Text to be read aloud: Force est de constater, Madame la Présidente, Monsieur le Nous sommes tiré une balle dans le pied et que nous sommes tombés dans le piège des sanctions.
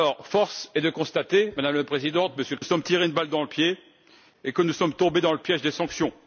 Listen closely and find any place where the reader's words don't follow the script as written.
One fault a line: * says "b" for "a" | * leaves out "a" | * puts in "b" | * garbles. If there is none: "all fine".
all fine